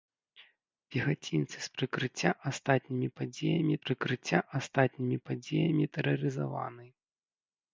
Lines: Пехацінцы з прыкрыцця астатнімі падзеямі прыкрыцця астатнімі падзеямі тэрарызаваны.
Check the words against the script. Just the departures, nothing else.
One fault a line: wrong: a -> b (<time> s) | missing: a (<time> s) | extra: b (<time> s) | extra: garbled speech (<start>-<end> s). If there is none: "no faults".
no faults